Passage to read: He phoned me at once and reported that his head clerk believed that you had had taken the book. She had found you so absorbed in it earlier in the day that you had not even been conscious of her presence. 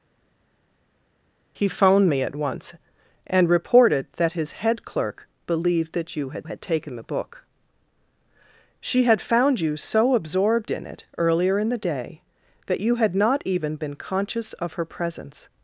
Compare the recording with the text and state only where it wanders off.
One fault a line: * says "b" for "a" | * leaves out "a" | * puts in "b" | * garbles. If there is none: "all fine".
all fine